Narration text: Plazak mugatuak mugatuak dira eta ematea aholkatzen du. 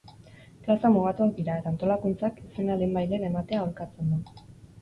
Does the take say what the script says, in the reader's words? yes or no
no